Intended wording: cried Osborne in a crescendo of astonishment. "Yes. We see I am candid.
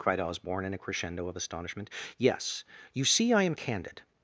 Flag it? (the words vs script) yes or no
yes